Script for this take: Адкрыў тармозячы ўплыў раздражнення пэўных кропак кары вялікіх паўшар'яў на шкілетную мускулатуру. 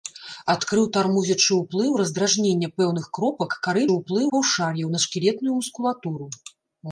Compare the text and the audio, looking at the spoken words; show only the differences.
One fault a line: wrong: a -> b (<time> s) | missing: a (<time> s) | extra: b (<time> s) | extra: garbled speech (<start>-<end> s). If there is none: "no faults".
wrong: вялікіх -> ўплыў (3.9 s)